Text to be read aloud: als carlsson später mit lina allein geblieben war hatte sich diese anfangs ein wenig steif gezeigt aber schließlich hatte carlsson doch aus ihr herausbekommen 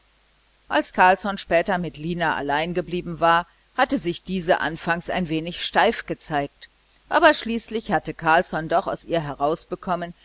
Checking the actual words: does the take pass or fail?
pass